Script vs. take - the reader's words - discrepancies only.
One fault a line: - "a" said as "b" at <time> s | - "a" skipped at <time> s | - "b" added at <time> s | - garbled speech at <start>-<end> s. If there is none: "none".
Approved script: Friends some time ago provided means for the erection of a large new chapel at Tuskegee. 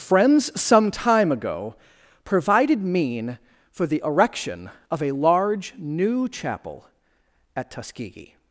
- "means" said as "mean" at 2.8 s